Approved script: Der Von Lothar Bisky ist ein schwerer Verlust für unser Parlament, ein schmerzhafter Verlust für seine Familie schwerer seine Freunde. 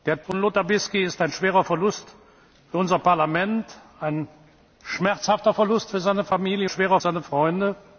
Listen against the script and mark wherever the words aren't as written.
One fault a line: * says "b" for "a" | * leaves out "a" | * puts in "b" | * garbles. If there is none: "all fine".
all fine